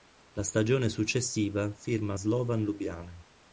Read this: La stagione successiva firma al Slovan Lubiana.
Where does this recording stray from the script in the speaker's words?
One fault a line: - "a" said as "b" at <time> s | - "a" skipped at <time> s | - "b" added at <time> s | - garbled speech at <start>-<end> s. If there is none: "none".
- "al" skipped at 2.1 s